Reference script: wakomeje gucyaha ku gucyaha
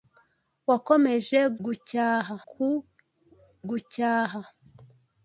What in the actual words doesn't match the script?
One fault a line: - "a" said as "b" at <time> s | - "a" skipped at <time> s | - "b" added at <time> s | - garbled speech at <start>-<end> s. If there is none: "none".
none